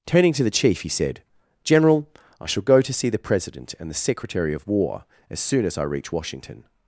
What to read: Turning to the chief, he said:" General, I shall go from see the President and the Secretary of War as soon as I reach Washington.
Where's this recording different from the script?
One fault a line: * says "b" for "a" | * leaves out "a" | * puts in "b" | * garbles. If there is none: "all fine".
* says "to" for "from"